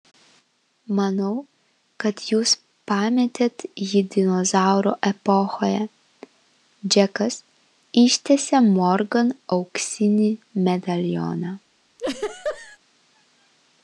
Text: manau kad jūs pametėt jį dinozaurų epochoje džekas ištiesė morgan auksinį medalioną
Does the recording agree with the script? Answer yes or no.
yes